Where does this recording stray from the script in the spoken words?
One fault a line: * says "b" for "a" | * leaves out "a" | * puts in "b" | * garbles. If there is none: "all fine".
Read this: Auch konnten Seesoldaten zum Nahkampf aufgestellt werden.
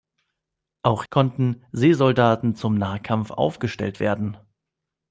all fine